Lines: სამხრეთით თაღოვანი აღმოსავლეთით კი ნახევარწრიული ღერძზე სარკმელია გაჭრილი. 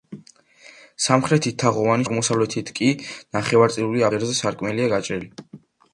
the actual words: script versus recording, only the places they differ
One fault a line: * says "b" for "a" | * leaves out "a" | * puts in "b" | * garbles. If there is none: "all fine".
all fine